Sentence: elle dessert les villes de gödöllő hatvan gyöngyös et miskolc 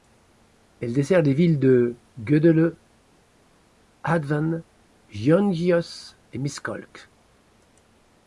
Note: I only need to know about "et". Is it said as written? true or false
true